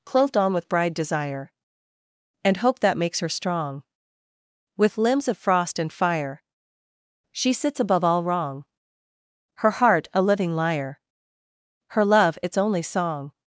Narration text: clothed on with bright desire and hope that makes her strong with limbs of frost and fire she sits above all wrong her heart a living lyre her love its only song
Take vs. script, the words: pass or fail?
fail